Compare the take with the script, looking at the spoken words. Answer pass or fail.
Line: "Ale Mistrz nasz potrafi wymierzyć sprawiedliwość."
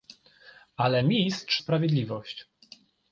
fail